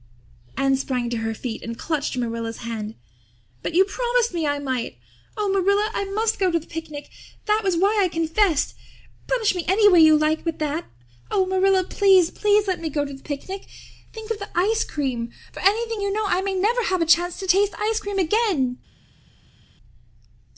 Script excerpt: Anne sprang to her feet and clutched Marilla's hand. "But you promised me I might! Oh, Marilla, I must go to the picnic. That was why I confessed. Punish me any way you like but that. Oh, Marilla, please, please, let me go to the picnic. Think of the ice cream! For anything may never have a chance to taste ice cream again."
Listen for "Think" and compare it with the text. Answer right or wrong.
right